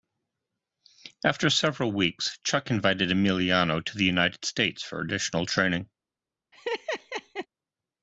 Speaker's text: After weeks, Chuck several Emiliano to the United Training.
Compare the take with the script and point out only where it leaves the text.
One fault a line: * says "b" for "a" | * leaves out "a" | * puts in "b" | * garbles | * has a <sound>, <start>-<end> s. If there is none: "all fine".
* puts in "several"
* says "invited" for "several"
* puts in "States for additional"
* has a laugh, 6.5-7.5 s